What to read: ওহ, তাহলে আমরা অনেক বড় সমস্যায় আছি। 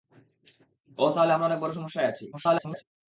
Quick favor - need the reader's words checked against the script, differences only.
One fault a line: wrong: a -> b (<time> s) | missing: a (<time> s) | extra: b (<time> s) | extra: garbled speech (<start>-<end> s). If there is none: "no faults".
extra: garbled speech (2.3-2.8 s)